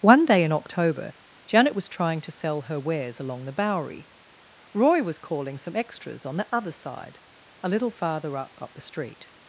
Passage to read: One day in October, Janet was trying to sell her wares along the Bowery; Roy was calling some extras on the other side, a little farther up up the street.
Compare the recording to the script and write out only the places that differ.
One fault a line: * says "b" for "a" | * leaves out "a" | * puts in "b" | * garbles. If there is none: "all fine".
all fine